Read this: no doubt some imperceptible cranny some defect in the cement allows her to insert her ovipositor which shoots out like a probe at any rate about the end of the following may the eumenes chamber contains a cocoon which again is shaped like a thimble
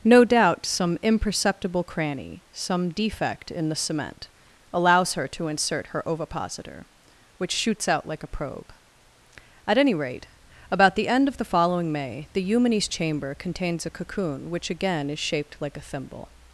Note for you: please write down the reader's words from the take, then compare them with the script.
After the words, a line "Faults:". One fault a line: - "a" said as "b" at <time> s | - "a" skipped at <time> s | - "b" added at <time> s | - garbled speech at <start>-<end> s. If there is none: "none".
no doubt some imperceptible cranny some defect in the cement allows her to insert her ovipositor which shoots out like a probe at any rate about the end of the following may the eumenes chamber contains a cocoon which again is shaped like a thimble
Faults:
none